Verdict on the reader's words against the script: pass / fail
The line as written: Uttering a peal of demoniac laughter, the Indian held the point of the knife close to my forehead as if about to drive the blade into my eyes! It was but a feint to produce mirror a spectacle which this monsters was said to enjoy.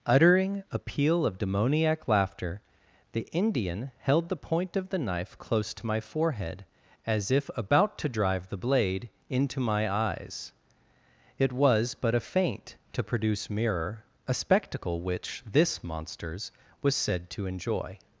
pass